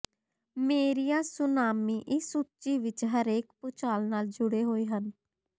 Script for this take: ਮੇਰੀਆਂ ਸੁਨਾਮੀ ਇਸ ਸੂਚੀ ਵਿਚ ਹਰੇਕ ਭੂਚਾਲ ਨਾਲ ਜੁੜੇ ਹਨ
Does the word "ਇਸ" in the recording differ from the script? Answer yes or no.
no